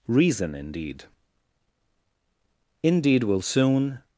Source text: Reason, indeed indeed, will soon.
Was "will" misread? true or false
false